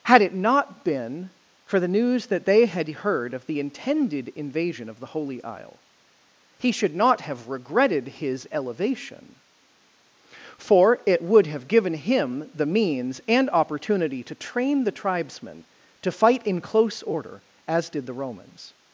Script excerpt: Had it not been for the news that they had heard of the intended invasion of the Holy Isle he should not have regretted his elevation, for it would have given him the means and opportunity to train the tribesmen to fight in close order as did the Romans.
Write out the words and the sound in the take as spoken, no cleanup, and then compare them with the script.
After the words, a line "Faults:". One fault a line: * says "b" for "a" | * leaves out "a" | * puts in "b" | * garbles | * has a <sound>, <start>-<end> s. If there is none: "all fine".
Had it not been for the news that they had heard of the intended invasion of the Holy Isle he should not have regretted his elevation, for it would have given him the means and opportunity to train the tribesmen to fight in close order as did the Romans.
Faults:
all fine